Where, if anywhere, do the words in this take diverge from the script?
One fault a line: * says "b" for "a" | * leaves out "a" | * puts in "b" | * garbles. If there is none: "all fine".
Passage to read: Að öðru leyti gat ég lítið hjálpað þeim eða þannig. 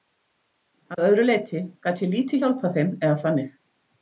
all fine